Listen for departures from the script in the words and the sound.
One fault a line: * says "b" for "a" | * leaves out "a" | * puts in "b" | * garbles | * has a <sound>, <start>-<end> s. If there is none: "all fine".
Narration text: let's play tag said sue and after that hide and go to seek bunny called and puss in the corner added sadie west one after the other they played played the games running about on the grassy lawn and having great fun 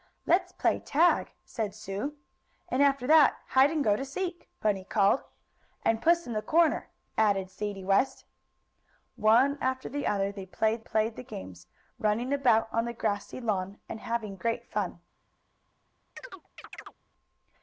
* has a chirp, 16.2-16.9 s